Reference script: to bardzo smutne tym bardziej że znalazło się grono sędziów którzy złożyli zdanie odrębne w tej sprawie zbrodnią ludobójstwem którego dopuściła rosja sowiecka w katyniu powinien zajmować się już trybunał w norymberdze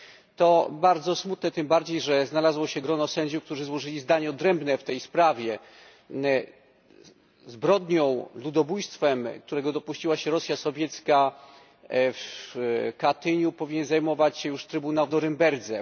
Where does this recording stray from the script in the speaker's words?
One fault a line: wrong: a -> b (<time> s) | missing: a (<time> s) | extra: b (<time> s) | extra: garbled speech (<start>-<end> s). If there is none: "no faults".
extra: się (10.2 s)